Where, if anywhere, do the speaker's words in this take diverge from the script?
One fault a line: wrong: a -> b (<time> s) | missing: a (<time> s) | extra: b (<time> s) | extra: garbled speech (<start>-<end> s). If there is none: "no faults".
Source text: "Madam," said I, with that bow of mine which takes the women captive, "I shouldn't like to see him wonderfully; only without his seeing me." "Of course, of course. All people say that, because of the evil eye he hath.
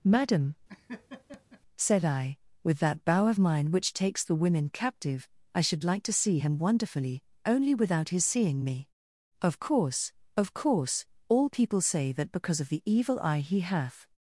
wrong: shouldn't -> should (5.6 s)